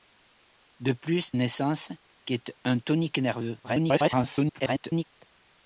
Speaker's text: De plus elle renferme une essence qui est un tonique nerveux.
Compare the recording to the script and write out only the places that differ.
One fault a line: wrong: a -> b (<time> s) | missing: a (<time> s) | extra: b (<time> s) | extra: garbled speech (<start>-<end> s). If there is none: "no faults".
missing: elle renferme (1.3 s)
extra: garbled speech (3.6-5.0 s)